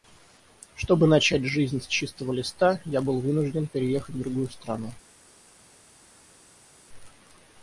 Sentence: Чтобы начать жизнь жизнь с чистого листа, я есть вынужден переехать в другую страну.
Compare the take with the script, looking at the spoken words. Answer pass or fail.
fail